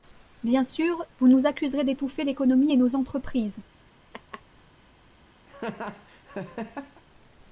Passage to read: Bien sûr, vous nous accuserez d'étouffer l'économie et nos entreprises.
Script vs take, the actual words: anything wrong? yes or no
no